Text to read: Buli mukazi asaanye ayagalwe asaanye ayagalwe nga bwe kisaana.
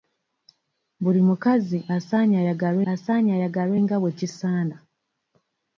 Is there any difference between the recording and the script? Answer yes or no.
no